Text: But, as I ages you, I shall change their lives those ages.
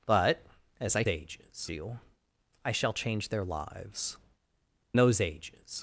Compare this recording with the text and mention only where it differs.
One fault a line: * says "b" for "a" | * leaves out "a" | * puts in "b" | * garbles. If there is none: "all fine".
all fine